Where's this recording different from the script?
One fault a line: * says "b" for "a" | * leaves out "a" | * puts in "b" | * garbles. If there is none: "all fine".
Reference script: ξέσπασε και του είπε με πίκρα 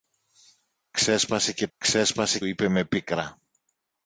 * says "ξέσπασε" for "του"